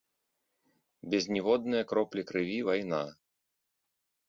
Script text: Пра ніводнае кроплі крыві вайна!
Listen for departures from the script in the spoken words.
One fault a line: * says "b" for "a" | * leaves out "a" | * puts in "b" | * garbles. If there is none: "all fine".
* says "Без" for "Пра"